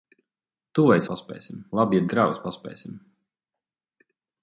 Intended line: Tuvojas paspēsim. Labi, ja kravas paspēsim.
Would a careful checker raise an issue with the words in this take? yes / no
no